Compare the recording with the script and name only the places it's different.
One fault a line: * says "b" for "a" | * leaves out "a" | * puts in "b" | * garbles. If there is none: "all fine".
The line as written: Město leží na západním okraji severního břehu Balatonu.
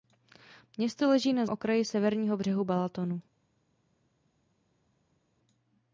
* leaves out "západním"